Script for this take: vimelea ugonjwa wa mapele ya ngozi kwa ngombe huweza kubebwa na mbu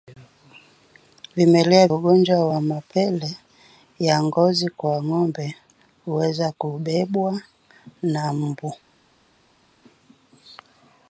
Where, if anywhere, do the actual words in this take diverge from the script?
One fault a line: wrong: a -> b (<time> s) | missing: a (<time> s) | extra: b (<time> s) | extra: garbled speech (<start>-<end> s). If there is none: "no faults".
no faults